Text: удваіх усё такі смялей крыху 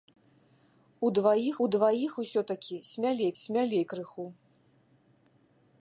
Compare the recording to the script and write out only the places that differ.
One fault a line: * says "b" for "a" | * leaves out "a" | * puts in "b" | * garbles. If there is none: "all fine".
* puts in "удваіх"
* puts in "смялей"